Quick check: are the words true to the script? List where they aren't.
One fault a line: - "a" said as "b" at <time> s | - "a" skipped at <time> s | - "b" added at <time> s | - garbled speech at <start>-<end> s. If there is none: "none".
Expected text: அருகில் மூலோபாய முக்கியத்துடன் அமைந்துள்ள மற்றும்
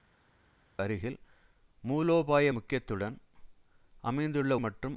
none